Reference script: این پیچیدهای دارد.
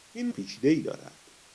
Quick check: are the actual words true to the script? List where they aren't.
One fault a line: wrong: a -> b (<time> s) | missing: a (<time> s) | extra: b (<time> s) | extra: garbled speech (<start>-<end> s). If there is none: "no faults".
no faults